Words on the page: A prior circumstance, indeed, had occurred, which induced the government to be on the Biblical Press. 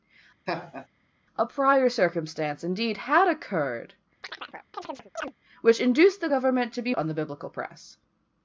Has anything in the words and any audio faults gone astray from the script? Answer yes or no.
yes